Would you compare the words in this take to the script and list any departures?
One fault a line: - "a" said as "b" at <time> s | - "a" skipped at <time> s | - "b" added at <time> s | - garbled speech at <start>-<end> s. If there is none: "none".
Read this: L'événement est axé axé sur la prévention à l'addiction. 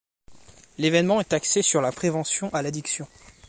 - "axé" skipped at 1.6 s